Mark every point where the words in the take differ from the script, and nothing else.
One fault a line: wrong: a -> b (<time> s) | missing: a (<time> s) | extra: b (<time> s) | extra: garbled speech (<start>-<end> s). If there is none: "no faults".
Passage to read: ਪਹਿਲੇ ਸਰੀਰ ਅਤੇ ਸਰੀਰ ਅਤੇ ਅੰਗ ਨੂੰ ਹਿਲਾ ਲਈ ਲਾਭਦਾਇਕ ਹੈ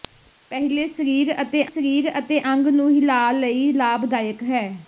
no faults